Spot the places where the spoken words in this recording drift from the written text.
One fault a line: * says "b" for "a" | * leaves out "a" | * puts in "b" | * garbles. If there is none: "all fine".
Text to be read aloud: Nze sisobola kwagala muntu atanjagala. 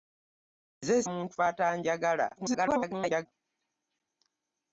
* leaves out "sisobola kwagala"
* garbles